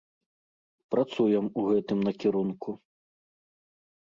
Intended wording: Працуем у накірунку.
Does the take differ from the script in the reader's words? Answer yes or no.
yes